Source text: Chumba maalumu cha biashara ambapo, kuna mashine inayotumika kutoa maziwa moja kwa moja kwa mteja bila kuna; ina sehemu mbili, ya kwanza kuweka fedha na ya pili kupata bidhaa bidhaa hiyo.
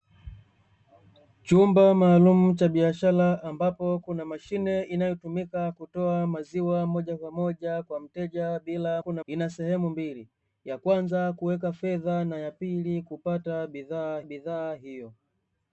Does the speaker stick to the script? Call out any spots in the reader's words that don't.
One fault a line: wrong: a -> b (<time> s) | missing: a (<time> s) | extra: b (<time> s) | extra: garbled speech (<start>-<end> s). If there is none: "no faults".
no faults